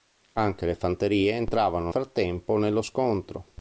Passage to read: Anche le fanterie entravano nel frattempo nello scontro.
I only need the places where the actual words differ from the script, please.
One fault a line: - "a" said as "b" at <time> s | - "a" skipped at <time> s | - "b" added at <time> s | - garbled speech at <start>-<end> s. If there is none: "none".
- "nel" skipped at 1.9 s